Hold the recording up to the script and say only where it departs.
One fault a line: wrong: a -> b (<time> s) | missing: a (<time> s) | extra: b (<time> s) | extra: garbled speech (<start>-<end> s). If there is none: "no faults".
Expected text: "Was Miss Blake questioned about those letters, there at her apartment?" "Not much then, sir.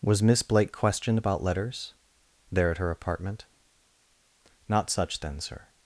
missing: those (1.4 s)
wrong: much -> such (4.9 s)